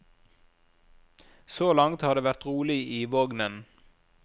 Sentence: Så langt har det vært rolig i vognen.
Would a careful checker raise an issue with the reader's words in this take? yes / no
no